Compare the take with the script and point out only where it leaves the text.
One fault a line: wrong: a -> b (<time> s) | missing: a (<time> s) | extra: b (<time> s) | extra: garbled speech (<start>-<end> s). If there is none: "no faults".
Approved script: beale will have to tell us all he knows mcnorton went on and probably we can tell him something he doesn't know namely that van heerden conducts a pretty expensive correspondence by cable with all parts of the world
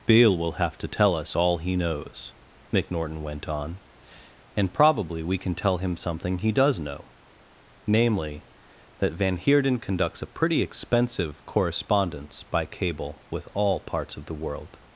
wrong: doesn't -> does (6.5 s)